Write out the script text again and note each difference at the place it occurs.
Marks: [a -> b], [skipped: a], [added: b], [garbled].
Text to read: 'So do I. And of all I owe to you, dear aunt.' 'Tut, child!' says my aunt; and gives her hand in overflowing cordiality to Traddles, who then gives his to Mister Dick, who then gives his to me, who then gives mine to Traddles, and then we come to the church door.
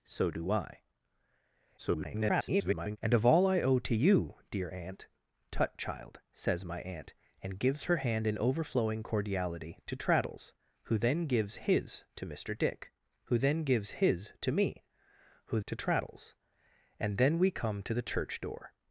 'So do I. [garbled] And of all I owe to you, dear aunt.' 'Tut, child!' says my aunt; and gives her hand in overflowing cordiality to Traddles, who then gives his to Mister Dick, who then gives his to me, who [skipped: then gives mine] to Traddles, and then we come to the church door.